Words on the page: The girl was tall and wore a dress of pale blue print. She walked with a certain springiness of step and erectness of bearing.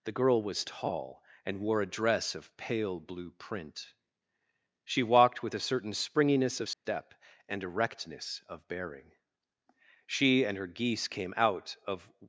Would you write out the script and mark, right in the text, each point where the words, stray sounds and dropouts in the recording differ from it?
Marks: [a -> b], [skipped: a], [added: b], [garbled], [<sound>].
The girl was tall and wore a dress of pale blue print. She walked with a certain springiness of step [dropout] and erectness of bearing. [added: She and her geese came out of]